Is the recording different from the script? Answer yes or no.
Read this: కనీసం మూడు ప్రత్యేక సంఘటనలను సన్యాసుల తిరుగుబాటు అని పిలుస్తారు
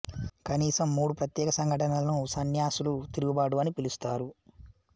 no